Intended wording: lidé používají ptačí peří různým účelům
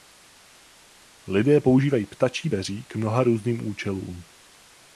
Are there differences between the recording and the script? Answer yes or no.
yes